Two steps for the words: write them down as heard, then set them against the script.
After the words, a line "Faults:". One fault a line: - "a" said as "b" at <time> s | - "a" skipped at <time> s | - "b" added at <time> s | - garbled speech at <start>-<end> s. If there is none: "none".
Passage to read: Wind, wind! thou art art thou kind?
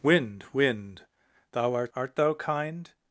Wind, wind! thou art art thou kind?
Faults:
none